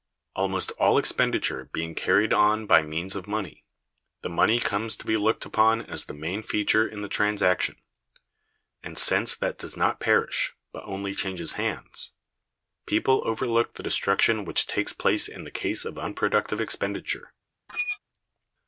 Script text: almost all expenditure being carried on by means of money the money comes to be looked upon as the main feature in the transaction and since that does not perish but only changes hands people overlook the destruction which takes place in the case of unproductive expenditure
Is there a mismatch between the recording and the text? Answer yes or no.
no